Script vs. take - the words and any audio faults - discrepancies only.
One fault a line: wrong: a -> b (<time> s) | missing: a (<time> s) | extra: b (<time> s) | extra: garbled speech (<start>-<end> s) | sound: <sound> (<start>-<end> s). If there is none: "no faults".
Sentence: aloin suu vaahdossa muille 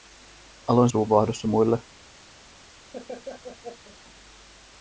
sound: laugh (2.9-4.0 s)